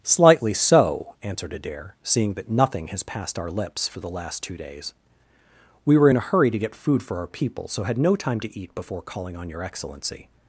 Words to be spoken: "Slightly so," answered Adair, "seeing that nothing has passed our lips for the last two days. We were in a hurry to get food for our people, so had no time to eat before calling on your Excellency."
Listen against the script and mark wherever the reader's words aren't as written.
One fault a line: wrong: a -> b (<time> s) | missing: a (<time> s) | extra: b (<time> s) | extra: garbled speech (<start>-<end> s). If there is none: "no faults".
no faults